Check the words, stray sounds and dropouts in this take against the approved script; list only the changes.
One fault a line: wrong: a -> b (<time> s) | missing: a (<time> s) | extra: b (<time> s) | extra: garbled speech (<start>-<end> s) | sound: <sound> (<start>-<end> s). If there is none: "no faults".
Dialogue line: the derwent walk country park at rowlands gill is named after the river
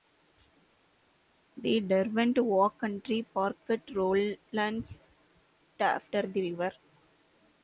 missing: gill is named (5.1 s)